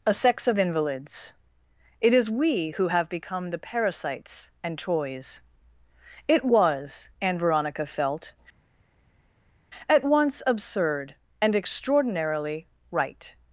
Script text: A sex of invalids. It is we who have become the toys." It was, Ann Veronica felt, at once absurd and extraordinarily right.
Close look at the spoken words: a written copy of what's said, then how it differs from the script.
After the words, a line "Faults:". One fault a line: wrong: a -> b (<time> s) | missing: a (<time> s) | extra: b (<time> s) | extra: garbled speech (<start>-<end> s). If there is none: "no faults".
A sex of invalids. It is we who have become the parasites and toys." It was, Ann Veronica felt, at once absurd and extraordinarily right.
Faults:
extra: parasites and (3.6 s)